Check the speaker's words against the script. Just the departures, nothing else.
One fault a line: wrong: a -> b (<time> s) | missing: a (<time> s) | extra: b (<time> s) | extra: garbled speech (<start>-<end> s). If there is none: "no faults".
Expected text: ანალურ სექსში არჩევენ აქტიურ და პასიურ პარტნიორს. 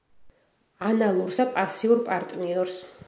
missing: სექსში არჩევენ აქტიურ (1.4 s)